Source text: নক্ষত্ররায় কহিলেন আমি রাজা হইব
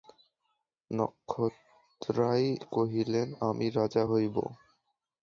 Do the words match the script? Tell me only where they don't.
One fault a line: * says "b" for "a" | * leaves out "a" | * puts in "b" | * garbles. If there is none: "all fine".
all fine